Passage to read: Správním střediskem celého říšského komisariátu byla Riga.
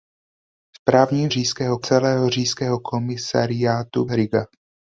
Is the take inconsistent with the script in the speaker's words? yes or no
yes